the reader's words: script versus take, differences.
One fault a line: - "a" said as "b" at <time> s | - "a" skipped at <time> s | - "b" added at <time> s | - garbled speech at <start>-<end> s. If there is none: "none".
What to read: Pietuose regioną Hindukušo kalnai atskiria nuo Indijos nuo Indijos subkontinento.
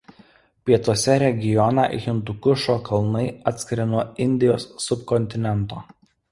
- "nuo Indijos" skipped at 4.7 s